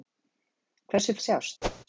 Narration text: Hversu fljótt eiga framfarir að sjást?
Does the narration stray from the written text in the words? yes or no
yes